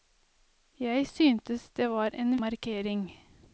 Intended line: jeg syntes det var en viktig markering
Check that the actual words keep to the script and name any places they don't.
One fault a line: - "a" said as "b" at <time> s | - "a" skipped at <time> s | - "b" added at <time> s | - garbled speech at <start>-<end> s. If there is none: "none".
- "viktig" skipped at 2.4 s